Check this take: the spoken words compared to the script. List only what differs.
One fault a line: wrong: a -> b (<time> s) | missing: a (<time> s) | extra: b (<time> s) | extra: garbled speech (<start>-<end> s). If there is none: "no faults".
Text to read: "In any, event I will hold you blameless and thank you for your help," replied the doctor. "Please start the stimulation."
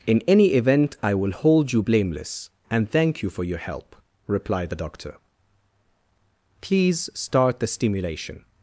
no faults